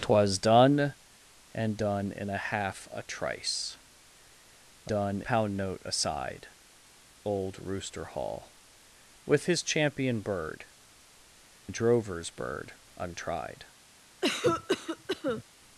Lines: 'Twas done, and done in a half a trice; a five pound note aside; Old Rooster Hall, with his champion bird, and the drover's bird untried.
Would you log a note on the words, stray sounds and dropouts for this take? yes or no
yes